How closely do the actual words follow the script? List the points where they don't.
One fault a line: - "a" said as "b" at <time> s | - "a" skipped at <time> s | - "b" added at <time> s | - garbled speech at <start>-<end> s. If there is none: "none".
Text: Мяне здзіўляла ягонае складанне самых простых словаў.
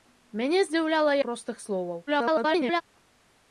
- "ягонае складанне самых" skipped at 1.1 s
- garbled speech at 2.1-2.8 s